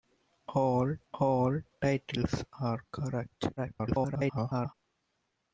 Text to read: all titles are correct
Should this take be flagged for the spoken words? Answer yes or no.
yes